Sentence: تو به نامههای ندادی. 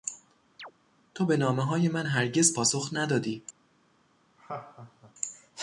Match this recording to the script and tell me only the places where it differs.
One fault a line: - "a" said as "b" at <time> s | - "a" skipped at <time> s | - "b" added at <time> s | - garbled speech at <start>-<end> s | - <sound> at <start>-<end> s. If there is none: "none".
- chirp at 0.6-0.7 s
- "من هرگز پاسخ" added at 1.9 s
- laugh at 4.4-5.1 s